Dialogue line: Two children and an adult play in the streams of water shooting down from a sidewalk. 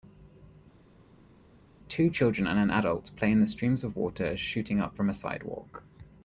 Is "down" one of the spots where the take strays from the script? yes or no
yes